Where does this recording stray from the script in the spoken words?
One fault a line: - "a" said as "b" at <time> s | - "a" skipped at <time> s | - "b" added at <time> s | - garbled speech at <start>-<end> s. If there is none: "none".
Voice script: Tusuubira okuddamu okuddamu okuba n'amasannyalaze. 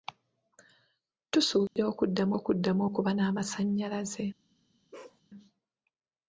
none